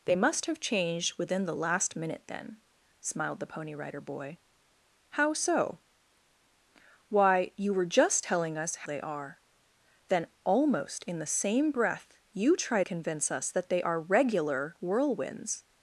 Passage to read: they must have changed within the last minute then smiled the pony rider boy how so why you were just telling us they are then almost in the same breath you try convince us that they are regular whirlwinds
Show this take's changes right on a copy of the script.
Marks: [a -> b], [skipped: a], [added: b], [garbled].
they must have changed within the last minute then smiled the pony rider boy how so why you were just telling us they are then almost in the same breath you try convince us that they are regular whirlwinds